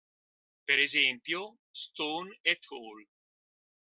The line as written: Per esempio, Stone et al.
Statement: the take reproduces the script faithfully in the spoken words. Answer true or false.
true